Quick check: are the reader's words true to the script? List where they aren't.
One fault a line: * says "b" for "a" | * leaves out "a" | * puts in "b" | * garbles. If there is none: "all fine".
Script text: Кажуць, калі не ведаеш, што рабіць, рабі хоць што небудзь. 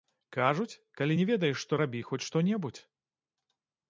* leaves out "рабіць"